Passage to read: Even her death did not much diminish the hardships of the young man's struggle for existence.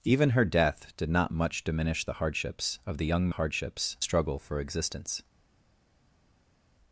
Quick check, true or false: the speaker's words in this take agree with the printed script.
false